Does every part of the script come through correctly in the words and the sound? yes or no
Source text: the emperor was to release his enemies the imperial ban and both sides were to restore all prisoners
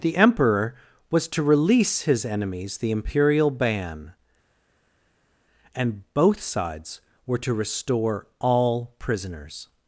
yes